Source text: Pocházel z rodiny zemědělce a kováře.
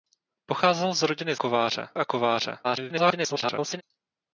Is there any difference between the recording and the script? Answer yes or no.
yes